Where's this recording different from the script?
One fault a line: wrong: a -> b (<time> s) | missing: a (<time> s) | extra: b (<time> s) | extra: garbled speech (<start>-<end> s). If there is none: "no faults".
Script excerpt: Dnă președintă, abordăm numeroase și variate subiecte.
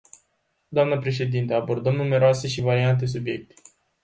no faults